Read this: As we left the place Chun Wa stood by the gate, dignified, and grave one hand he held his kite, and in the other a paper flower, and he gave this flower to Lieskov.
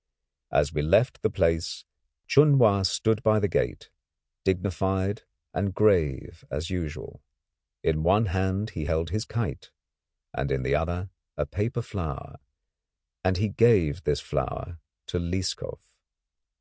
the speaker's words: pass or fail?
fail